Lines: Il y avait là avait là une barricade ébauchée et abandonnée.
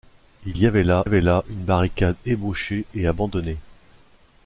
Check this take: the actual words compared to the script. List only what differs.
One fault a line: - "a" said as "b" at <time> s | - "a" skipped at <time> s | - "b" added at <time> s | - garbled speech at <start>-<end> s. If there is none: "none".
none